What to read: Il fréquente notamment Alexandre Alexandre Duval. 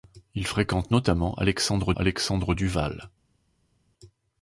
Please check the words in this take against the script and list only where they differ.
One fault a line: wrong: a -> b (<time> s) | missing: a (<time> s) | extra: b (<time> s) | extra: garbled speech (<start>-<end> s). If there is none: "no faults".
no faults